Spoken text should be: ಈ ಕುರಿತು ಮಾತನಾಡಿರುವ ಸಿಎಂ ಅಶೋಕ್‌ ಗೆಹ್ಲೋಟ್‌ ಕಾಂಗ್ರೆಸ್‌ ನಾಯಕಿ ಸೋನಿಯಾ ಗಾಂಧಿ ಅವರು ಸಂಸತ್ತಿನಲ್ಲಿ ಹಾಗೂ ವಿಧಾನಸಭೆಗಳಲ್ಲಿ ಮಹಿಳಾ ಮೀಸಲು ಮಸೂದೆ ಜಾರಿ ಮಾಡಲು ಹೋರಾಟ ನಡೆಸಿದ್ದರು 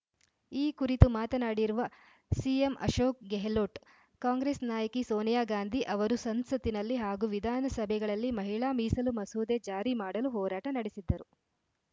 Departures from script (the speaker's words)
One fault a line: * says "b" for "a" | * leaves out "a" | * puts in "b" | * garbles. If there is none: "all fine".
all fine